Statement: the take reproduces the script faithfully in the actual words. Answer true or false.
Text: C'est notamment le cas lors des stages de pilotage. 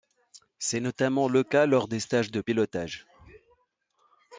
true